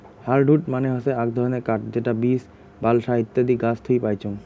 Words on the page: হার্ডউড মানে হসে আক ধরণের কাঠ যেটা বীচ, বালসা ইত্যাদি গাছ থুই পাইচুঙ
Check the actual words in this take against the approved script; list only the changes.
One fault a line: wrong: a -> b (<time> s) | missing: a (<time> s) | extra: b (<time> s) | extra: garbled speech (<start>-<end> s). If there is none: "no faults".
no faults